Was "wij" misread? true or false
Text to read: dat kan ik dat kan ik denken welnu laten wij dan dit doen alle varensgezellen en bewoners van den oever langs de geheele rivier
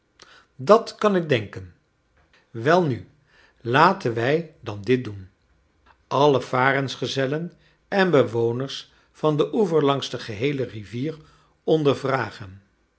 false